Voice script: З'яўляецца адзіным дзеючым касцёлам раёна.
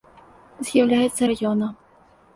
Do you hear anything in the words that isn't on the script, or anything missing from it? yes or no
yes